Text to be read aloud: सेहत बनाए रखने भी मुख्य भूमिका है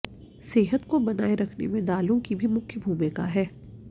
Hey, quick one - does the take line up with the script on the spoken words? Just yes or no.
no